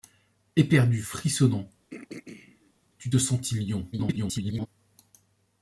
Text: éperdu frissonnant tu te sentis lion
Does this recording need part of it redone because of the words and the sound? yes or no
yes